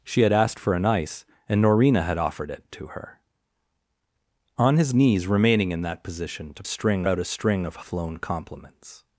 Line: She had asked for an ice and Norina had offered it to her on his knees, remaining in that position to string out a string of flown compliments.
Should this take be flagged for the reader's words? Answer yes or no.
no